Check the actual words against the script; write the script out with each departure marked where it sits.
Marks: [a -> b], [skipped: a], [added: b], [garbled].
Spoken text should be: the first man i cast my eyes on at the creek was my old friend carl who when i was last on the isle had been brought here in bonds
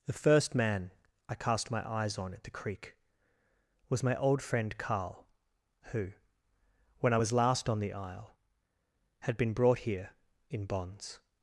the first man i cast my eyes on at the creek was my old friend carl who when i was last on the isle had been brought here in bonds